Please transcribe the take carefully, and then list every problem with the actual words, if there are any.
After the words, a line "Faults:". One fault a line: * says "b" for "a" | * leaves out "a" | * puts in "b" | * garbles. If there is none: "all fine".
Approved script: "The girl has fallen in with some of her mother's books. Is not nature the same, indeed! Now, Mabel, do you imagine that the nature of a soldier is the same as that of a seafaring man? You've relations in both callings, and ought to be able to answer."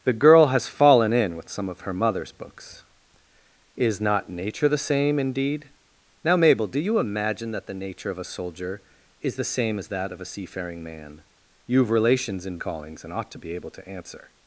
"The girl has fallen in with some of her mother's books. Is not nature the same, indeed! Now, Mabel, do you imagine that the nature of a soldier is the same as that of a seafaring man? You've relations in callings, and ought to be able to answer."
Faults:
* leaves out "both"